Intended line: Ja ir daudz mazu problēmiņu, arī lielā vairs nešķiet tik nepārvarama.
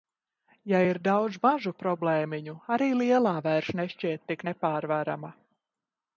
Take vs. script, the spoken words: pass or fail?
pass